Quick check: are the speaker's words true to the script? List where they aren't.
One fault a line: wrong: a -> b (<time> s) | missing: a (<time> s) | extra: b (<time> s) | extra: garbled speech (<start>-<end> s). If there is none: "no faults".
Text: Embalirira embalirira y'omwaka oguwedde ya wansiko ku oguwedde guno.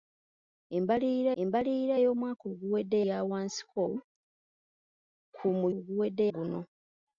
no faults